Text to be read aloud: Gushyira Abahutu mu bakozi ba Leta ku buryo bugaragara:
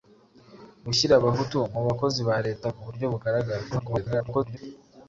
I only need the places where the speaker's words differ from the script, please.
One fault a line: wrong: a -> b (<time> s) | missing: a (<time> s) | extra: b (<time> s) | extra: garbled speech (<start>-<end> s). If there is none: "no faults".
extra: garbled speech (3.7-4.6 s)